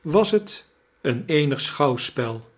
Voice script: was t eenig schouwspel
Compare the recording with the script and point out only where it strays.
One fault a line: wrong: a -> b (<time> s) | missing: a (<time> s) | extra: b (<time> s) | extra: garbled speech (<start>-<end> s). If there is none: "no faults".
extra: een (1.0 s)